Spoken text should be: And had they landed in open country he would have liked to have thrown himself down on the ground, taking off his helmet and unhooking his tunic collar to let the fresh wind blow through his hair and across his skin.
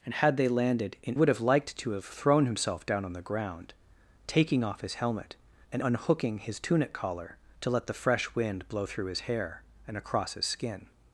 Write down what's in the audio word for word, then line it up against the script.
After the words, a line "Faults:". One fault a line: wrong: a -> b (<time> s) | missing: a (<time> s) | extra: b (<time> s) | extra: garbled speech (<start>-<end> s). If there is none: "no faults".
And had they landed in would have liked to have thrown himself down on the ground, taking off his helmet and unhooking his tunic collar to let the fresh wind blow through his hair and across his skin.
Faults:
missing: open country he (1.2 s)